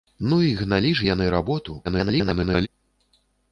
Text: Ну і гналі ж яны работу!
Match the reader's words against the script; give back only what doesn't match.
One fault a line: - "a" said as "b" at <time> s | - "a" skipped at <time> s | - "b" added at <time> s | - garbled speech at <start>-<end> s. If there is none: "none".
- garbled speech at 1.8-2.7 s